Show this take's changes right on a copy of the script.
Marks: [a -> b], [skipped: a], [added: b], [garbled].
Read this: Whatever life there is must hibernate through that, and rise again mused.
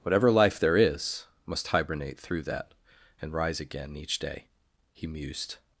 Whatever life there is must hibernate through that, and rise again [added: each day He] mused.